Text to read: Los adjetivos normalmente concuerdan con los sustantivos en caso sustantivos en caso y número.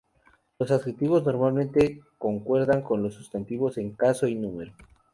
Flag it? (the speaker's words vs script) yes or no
yes